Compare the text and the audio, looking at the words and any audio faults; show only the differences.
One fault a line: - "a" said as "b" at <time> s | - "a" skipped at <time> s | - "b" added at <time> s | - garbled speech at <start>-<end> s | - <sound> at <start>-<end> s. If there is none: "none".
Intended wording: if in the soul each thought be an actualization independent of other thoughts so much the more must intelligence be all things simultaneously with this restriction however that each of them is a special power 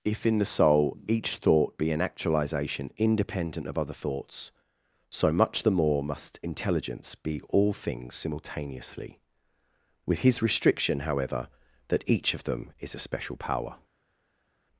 - "this" said as "his" at 10.2 s